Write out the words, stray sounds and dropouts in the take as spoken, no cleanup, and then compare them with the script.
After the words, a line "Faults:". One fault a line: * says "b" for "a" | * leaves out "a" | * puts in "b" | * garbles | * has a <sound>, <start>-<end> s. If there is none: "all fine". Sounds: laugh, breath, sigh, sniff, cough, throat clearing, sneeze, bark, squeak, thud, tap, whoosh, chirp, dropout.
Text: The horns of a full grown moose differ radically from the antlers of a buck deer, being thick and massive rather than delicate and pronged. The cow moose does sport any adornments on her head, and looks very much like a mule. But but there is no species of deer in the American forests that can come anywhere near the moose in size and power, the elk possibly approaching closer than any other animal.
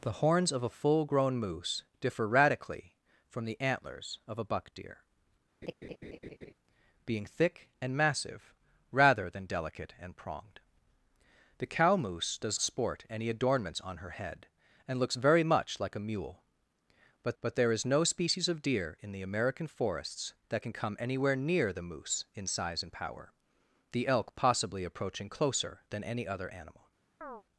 The horns of a full grown moose differ radically from the antlers of a buck deer, being thick and massive rather than delicate and pronged. The cow moose does sport any adornments on her head, and looks very much like a mule. But but there is no species of deer in the American forests that can come anywhere near the moose in size and power, the elk possibly approaching closer than any other animal.
Faults:
* has a laugh, 5.6-6.5 s
* has a chirp, 27.2-27.4 s